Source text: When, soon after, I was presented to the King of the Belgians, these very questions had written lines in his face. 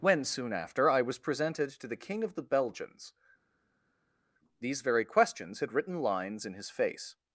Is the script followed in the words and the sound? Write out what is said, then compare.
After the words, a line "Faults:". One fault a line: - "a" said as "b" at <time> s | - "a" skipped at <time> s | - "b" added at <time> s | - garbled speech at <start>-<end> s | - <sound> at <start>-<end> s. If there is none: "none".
When, soon after, I was presented to the King of the Belgians, these very questions had written lines in his face.
Faults:
none